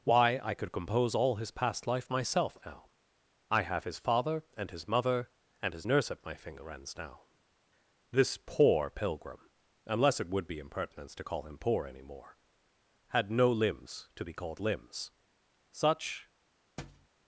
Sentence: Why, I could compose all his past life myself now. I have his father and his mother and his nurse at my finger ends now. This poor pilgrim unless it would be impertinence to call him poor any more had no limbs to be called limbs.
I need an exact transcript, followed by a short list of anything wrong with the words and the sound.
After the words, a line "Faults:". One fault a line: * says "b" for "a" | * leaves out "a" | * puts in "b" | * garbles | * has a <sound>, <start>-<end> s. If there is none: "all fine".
Why, I could compose all his past life myself now. I have his father and his mother and his nurse at my finger ends now. This poor pilgrim unless it would be impertinence to call him poor any more had no limbs to be called limbs. Such
Faults:
* puts in "Such"
* has a thud, 16.8-17.1 s